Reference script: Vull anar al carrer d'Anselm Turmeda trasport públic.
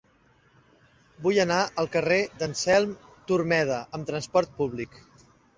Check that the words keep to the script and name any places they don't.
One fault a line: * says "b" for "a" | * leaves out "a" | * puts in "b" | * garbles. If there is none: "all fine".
* puts in "amb"